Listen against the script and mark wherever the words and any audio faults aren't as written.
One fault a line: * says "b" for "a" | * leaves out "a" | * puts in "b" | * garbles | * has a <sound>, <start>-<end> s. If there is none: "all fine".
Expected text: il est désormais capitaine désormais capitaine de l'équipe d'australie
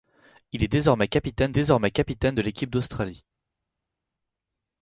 all fine